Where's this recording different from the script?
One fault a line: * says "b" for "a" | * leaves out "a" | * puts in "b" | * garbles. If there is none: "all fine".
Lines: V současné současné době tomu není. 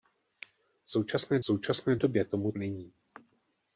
all fine